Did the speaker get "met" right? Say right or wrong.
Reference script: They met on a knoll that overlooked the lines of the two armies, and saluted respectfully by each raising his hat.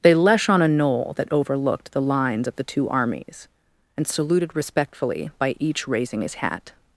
wrong